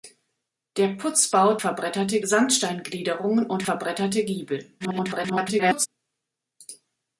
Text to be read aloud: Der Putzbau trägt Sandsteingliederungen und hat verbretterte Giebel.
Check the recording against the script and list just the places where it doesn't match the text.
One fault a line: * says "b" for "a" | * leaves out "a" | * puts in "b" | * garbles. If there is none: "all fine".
* says "verbretterte" for "trägt"
* leaves out "hat"
* garbles